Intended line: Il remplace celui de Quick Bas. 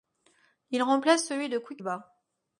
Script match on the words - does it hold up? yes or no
yes